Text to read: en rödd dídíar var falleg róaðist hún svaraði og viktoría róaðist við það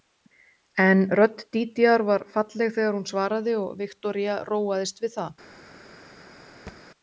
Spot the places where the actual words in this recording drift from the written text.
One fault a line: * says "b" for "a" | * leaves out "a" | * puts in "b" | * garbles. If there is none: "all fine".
* says "þegar" for "róaðist"